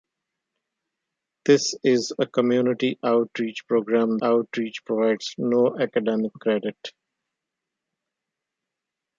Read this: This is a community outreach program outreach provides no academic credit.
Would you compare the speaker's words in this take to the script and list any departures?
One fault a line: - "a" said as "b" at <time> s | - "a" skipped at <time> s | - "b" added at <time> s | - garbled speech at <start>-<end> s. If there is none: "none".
none